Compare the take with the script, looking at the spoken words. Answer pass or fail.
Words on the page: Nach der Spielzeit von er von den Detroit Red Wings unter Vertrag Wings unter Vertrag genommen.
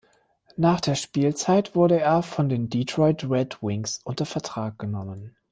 fail